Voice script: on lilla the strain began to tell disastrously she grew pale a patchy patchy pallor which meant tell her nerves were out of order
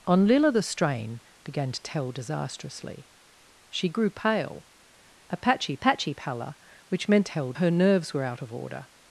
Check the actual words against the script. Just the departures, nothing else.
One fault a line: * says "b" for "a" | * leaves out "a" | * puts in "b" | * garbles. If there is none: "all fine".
all fine